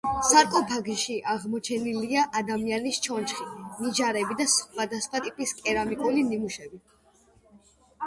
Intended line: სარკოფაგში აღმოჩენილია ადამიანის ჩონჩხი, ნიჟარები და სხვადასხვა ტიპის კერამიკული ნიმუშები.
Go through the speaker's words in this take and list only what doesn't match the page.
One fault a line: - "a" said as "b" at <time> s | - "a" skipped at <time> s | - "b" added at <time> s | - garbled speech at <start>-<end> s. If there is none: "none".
none